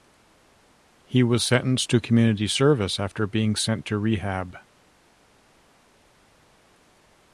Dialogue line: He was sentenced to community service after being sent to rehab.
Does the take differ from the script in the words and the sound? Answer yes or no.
no